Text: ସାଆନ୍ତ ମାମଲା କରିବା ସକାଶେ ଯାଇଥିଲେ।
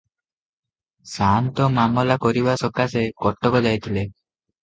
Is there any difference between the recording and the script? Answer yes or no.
yes